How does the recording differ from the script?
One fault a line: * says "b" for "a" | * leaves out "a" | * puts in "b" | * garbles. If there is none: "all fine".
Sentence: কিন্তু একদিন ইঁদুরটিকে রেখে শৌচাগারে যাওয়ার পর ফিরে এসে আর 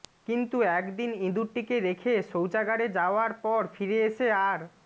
all fine